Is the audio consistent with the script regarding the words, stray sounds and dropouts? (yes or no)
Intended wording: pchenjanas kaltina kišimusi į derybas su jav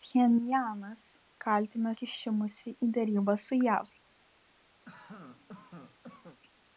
no